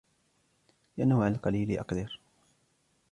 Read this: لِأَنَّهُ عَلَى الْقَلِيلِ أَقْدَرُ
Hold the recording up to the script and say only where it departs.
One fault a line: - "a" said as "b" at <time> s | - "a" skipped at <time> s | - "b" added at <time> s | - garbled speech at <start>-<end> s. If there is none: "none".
none